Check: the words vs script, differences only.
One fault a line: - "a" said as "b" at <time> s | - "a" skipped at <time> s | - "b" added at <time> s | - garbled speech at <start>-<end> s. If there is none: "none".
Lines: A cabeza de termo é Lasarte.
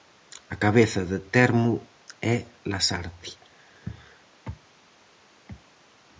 none